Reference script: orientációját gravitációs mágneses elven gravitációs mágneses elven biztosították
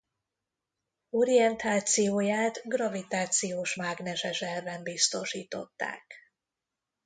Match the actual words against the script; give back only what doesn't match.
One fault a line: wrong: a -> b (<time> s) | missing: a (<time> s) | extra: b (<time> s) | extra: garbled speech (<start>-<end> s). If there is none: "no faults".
missing: gravitációs mágneses elven (4.8 s)